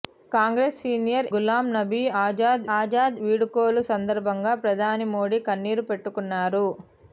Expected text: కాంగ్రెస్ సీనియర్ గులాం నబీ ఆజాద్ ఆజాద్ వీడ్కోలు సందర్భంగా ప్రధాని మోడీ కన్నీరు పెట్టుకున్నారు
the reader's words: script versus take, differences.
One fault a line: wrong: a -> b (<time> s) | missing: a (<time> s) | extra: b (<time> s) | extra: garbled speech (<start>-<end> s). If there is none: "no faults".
no faults